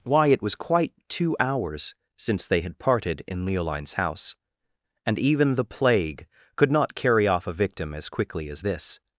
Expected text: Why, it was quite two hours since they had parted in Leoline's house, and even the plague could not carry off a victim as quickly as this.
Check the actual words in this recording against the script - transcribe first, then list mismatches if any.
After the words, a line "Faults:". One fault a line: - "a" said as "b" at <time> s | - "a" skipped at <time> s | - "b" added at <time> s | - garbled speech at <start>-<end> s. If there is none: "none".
Why, it was quite two hours since they had parted in Leoline's house, and even the plague could not carry off a victim as quickly as this.
Faults:
none